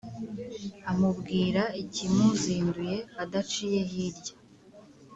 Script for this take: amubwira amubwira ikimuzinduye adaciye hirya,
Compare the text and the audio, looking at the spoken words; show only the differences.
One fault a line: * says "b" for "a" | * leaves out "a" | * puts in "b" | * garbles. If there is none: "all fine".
* leaves out "amubwira"